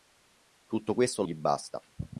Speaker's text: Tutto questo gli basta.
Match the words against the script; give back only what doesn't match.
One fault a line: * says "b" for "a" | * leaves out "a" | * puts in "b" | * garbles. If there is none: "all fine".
all fine